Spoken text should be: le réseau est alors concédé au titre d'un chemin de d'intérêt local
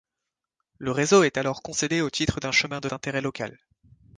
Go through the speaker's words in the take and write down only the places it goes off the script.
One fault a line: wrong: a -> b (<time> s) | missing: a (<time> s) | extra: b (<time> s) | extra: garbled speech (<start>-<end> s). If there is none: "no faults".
no faults